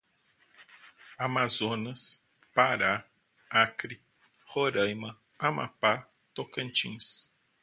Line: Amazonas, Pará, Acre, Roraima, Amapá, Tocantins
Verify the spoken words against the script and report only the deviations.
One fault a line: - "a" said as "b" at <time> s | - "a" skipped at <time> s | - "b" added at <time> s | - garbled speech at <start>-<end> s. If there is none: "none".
none